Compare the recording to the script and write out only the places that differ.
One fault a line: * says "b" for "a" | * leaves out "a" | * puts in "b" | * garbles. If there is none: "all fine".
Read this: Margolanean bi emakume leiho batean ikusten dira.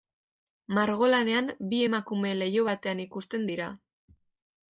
all fine